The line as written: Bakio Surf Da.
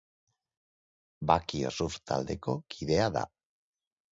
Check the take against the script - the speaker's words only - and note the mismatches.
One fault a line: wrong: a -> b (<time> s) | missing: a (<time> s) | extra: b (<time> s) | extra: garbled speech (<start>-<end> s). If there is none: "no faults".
extra: Taldeko kidea (2.1 s)